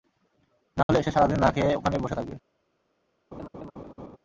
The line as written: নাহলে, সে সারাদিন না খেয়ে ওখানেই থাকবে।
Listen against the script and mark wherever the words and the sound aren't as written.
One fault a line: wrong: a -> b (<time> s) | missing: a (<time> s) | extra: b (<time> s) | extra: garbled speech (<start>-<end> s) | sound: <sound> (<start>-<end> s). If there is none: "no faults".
sound: dropout (0.8-0.9 s)
extra: বসে (2.0 s)
sound: laugh (3.3-4.2 s)